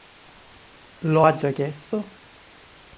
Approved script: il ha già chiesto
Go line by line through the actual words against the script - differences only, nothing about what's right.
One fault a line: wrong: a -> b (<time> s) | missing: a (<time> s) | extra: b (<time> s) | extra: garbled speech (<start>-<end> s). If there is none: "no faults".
wrong: il -> lo (1.0 s)